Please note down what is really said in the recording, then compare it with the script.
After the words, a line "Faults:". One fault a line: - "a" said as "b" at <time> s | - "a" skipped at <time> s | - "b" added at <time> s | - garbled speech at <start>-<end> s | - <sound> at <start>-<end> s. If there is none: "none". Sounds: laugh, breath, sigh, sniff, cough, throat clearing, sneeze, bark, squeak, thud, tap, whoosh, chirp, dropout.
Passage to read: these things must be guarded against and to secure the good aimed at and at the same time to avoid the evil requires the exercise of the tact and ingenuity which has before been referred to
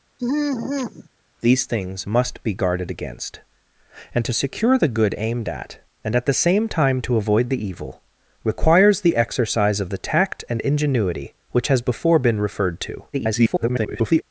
these things must be guarded against and to secure the good aimed at and at the same time to avoid the evil requires the exercise of the tact and ingenuity which has before been referred to [garbled]
Faults:
- sigh at 0.2-1.1 s
- garbled speech at 13.1-14.2 s